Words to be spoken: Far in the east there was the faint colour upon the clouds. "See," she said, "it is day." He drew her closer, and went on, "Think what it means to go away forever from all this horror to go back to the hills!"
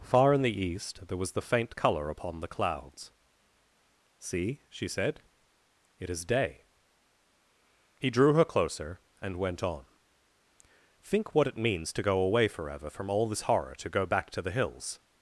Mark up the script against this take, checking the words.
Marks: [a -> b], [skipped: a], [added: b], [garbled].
Far in the east there was the faint colour upon the clouds. "See," she said, "it is day." He drew her closer, and went on, "Think what it means to go away forever from all this horror to go back to the hills!"